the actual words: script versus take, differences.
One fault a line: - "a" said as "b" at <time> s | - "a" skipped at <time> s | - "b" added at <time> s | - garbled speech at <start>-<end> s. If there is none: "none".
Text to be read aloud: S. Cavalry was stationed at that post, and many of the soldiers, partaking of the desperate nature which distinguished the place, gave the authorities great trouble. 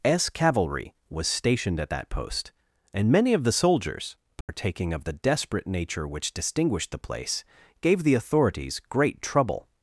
none